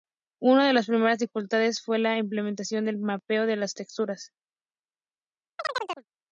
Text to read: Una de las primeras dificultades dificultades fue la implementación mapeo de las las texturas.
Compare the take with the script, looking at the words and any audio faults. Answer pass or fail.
fail